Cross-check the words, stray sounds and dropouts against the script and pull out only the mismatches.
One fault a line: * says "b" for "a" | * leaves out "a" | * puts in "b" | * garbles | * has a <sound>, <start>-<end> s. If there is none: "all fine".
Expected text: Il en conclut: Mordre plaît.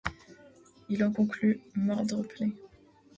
all fine